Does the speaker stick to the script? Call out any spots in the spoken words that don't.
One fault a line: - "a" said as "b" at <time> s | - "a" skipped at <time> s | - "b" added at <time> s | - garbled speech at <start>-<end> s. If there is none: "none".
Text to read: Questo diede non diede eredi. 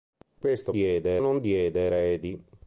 none